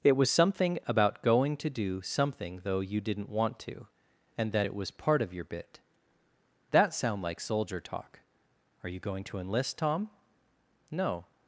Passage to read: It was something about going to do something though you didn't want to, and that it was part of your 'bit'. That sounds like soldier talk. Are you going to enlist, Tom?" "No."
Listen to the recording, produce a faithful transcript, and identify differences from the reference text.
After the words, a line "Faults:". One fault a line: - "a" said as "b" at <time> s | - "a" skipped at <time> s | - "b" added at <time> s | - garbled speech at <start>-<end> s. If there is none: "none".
It was something about going to do something though you didn't want to, and that it was part of your 'bit'. That sound like soldier talk. Are you going to enlist, Tom?" "No."
Faults:
- "sounds" said as "sound" at 6.9 s